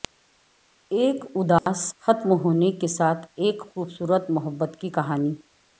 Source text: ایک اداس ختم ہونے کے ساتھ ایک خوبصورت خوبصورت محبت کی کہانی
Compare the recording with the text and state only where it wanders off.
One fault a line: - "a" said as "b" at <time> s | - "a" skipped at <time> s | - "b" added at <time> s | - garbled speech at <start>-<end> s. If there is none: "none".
- "خوبصورت" skipped at 4.3 s